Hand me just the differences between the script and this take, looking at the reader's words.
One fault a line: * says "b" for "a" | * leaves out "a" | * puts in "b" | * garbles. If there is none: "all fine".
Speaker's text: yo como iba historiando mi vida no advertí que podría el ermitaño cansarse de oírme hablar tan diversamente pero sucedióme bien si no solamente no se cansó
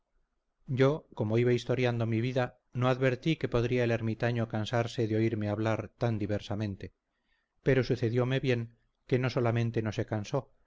* says "que" for "si"